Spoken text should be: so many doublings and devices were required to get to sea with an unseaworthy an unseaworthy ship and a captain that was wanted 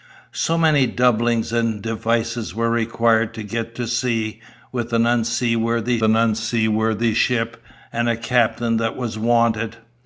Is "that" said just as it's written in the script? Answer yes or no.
yes